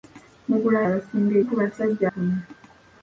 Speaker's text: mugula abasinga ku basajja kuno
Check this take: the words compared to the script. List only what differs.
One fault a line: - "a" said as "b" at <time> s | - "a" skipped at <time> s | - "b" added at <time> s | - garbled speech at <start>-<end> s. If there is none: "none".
none